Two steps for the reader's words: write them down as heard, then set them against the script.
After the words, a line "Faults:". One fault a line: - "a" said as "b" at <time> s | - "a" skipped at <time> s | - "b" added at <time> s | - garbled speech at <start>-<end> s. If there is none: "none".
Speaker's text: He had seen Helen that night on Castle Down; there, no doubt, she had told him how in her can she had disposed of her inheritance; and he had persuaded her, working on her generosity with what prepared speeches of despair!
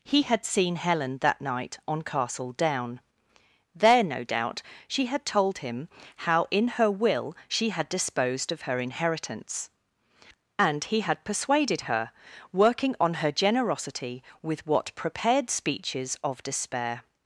He had seen Helen that night on Castle Down; there, no doubt, she had told him how in her will she had disposed of her inheritance; and he had persuaded her, working on her generosity with what prepared speeches of despair!
Faults:
- "can" said as "will" at 6.9 s